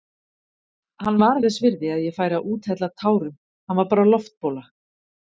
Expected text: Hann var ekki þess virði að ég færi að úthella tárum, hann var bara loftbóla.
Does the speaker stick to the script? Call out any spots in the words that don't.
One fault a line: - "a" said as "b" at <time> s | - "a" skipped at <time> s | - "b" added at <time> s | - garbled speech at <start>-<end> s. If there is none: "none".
- "ekki" skipped at 1.4 s